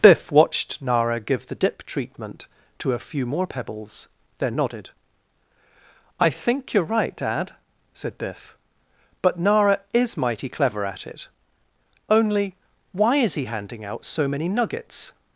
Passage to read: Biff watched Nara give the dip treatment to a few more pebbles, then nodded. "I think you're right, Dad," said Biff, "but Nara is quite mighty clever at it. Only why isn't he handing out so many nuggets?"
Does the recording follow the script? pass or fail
fail